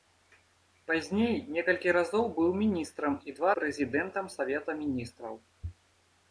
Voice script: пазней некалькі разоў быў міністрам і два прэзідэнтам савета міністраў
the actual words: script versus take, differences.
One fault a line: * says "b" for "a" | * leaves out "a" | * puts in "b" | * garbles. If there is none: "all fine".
all fine